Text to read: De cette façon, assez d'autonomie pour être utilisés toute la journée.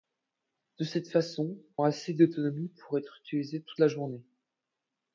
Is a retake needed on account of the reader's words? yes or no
no